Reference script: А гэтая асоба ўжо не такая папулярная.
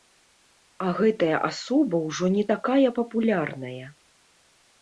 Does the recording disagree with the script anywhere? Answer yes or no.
no